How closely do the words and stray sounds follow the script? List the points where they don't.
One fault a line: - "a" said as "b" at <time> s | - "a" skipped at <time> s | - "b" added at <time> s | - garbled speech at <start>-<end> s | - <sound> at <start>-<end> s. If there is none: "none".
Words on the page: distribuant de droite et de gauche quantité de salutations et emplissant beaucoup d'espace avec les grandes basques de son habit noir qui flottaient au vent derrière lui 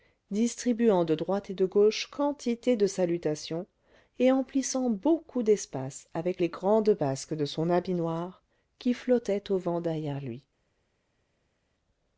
none